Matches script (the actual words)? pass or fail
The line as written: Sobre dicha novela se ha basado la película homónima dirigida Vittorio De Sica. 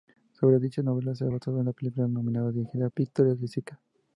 pass